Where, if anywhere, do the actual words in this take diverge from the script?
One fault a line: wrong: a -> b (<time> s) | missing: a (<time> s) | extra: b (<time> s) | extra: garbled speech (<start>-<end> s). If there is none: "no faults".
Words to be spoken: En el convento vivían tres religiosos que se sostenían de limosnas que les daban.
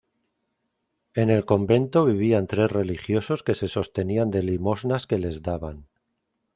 no faults